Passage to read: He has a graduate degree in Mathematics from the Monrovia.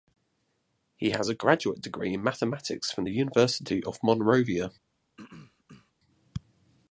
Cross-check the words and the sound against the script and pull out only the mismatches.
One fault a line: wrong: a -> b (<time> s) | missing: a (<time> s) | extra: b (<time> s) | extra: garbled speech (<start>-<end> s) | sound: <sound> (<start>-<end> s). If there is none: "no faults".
extra: University of (3.1 s)
sound: throat clearing (5.2-5.9 s)